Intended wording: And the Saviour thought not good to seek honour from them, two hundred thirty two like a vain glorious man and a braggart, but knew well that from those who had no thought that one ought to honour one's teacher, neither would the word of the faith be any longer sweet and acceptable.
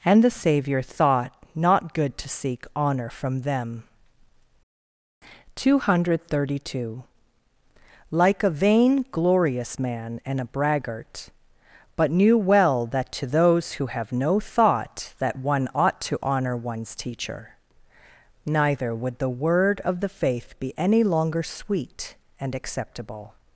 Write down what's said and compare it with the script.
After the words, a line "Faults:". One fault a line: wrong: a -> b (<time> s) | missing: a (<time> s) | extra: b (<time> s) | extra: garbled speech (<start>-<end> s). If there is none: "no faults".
And the Saviour thought not good to seek honour from them, two hundred thirty two like a vain glorious man and a braggart, but knew well that to those who have no thought that one ought to honour one's teacher, neither would the word of the faith be any longer sweet and acceptable.
Faults:
wrong: from -> to (13.1 s)
wrong: had -> have (13.8 s)